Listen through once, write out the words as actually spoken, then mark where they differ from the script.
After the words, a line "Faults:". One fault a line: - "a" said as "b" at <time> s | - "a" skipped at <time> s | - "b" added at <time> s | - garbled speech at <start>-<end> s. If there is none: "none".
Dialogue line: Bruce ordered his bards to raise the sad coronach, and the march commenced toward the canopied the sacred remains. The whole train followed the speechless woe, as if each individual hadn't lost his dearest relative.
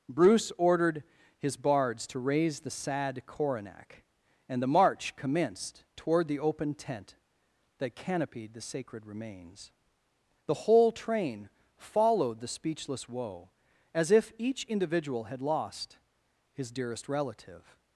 Bruce ordered his bards to raise the sad coronach, and the march commenced toward the open tent that canopied the sacred remains. The whole train followed the speechless woe, as if each individual had lost his dearest relative.
Faults:
- "open tent that" added at 6.4 s
- "hadn't" said as "had" at 15.2 s